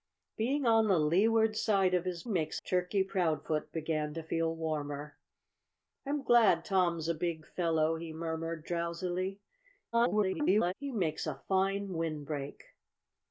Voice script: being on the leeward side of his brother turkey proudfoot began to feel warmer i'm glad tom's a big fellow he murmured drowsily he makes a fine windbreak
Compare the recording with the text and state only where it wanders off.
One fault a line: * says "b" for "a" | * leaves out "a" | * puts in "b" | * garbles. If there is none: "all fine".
* says "makes" for "brother"
* garbles